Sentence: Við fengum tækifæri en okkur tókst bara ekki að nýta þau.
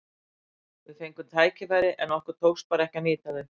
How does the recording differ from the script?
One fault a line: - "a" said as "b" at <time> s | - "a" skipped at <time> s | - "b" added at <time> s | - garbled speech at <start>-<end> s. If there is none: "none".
none